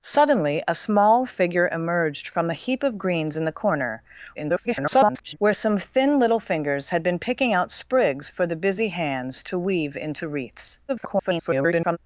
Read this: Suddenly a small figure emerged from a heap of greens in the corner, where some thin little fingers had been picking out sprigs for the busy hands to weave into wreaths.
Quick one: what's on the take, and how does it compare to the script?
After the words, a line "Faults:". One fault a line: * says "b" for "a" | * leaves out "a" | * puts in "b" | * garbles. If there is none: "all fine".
Suddenly a small figure emerged from a heap of greens in the corner, [garbled] where some thin little fingers had been picking out sprigs for the busy hands to weave into wreaths. [garbled]
Faults:
* garbles
* garbles